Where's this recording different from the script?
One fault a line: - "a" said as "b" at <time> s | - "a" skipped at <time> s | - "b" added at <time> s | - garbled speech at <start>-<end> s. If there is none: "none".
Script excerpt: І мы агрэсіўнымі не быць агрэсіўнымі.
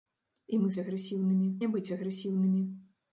none